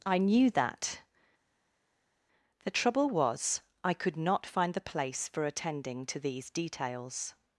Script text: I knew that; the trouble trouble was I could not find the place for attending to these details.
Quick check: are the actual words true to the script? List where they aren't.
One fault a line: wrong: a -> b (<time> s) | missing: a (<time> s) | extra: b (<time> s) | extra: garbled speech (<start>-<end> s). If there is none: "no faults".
missing: trouble (3.1 s)